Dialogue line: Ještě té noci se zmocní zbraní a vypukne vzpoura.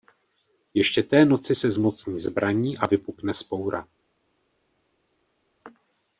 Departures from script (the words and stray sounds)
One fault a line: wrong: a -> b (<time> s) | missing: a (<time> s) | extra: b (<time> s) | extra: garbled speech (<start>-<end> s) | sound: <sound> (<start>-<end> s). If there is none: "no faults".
no faults